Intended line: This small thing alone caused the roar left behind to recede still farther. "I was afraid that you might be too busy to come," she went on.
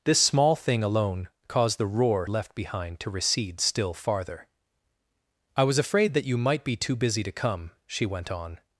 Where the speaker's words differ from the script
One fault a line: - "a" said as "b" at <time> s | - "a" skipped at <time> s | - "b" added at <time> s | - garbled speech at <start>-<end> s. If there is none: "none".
none